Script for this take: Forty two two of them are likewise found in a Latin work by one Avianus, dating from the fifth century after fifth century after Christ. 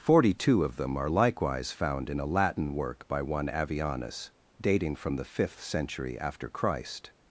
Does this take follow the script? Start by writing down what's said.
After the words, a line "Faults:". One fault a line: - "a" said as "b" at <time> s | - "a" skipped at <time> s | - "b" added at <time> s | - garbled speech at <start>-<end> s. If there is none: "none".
Forty two of them are likewise found in a Latin work by one Avianus, dating from the fifth century after Christ.
Faults:
- "two" skipped at 0.6 s
- "fifth century after" skipped at 6.5 s